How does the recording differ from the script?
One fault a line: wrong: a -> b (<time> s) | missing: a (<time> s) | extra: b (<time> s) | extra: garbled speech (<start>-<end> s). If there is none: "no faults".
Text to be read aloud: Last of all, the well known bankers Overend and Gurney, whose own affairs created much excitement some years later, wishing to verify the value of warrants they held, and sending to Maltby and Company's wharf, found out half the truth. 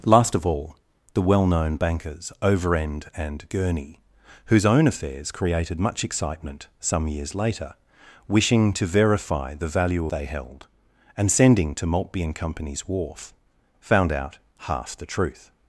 missing: of warrants (10.1 s)